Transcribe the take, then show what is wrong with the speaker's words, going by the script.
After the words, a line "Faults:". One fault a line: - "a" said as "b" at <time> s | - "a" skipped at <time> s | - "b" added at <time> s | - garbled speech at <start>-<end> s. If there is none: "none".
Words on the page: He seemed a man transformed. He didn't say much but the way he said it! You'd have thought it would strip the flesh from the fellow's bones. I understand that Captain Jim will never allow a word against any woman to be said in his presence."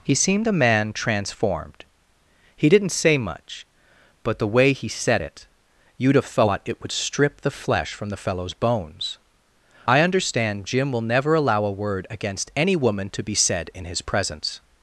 He seemed a man transformed. He didn't say much but the way he said it! You'd have thought it would strip the flesh from the fellow's bones. I understand Jim will never allow a word against any woman to be said in his presence."
Faults:
- "that Captain" skipped at 10.6 s